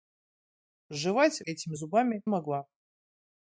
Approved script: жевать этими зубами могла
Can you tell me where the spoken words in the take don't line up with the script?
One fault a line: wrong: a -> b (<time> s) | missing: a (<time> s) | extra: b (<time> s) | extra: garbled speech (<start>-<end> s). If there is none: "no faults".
no faults